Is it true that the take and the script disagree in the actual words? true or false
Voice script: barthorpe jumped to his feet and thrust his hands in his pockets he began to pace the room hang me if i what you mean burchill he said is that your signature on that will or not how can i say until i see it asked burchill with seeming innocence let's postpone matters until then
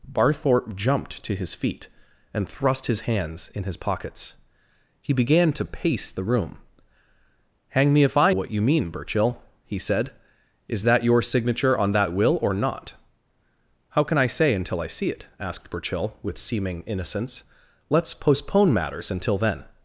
false